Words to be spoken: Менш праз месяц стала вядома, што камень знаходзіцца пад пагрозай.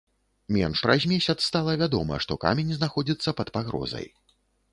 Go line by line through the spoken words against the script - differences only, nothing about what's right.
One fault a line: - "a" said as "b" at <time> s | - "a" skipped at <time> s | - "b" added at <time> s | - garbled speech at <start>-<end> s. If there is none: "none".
none